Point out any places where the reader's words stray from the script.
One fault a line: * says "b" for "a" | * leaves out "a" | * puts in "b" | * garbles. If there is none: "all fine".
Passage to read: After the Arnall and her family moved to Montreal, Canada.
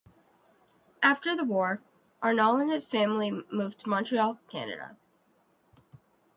* puts in "war"
* says "his" for "her"